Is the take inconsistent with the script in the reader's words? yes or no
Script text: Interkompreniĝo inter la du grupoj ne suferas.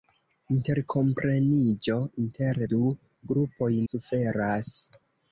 yes